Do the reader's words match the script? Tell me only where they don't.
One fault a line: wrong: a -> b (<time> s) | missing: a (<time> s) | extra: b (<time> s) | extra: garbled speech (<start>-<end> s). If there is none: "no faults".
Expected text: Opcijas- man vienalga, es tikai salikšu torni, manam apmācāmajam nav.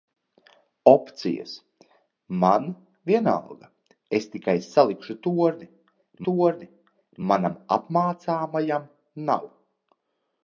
extra: torni (6.3 s)